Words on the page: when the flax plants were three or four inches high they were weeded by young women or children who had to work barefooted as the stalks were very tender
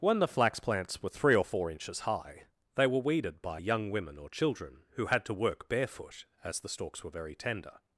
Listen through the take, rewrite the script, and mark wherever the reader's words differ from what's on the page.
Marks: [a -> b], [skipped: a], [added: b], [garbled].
when the flax plants were three or four inches high they were weeded by young women or children who had to work [barefooted -> barefoot] as the stalks were very tender